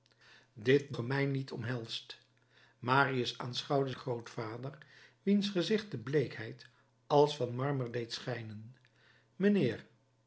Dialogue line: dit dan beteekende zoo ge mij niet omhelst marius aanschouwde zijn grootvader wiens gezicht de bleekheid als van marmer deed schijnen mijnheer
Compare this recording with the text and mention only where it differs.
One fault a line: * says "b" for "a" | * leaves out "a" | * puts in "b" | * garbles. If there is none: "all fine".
* leaves out "dan beteekende zoo"
* leaves out "zijn"